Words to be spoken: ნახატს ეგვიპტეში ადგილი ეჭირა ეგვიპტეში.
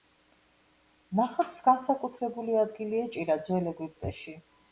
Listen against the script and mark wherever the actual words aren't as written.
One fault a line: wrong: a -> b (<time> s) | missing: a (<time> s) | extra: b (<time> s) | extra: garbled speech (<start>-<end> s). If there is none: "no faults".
wrong: ეგვიპტეში -> განსაკუთრებული (1.7 s)
extra: ძველ (3.5 s)